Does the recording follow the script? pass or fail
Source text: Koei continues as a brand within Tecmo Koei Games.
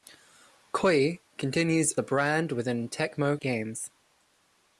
fail